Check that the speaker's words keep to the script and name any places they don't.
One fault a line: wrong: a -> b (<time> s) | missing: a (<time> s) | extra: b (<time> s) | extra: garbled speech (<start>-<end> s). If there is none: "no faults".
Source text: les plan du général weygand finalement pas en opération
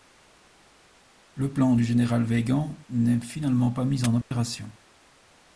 wrong: les -> le (1.4 s)
extra: n'est (2.9 s)
extra: mis (3.8 s)